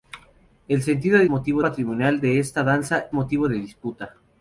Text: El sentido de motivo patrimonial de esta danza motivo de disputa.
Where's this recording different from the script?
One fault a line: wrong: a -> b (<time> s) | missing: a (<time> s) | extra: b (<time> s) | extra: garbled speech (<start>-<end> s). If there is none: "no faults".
no faults